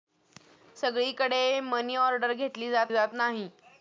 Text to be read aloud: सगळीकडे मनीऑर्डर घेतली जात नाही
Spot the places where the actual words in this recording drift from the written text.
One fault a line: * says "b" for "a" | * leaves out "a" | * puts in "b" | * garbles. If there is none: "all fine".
* puts in "जात"